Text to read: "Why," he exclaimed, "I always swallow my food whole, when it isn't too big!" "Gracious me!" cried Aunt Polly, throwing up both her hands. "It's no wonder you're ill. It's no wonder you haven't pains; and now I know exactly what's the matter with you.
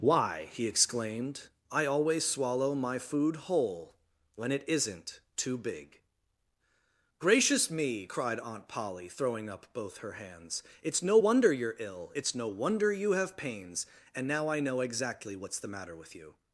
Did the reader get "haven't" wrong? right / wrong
wrong